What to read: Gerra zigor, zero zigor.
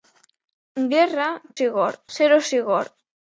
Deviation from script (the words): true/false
false